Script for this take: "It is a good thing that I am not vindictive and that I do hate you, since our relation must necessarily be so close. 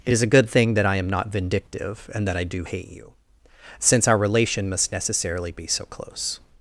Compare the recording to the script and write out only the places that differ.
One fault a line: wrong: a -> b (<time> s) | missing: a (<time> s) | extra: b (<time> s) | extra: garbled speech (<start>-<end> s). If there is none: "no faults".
no faults